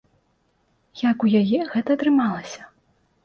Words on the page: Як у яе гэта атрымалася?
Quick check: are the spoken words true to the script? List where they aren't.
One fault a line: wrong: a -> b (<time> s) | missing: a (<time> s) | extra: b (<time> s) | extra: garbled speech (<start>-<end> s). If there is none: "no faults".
no faults